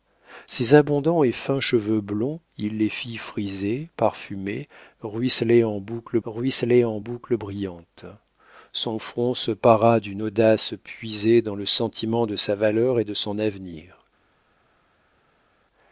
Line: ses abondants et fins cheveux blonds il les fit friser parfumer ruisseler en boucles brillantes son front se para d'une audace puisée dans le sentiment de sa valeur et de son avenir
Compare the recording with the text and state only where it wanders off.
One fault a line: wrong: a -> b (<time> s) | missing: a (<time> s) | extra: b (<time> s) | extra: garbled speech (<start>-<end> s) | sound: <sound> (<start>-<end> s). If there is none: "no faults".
extra: ruisseler en boucles (6.2 s)